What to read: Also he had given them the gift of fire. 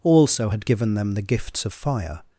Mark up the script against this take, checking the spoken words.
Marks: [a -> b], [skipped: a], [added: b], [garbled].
Also [skipped: he] had given them the [gift -> gifts] of fire.